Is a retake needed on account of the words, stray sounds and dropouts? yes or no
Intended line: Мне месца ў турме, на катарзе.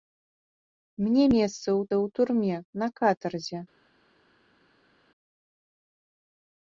yes